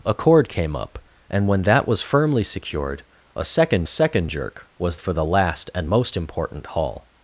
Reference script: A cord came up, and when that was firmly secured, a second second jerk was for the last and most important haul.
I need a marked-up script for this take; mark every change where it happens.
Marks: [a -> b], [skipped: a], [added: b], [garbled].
A cord came up, and when that was firmly secured, a second second jerk was for the last and most important haul.